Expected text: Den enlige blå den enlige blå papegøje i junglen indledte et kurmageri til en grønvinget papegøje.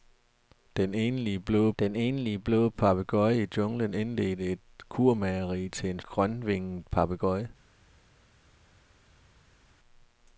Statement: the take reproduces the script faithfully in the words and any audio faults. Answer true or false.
true